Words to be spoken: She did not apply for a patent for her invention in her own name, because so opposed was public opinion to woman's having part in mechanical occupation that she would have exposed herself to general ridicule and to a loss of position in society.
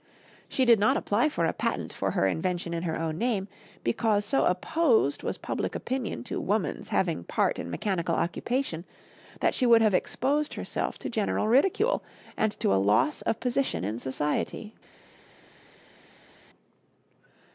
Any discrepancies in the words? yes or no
no